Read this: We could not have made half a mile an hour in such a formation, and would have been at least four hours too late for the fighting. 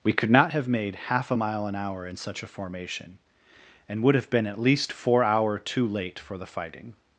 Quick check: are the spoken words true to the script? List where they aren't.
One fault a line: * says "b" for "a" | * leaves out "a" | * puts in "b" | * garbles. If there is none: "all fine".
* says "hour" for "hours"